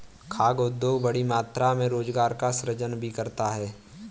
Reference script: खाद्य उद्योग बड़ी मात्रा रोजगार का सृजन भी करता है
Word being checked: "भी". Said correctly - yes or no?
yes